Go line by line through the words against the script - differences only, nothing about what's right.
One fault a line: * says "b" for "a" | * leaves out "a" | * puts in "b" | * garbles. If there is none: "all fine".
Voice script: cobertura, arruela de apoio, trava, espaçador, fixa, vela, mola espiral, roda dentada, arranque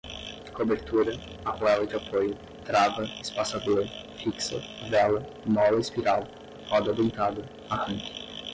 all fine